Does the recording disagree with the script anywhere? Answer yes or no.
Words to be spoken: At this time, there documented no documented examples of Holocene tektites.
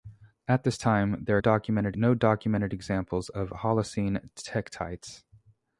no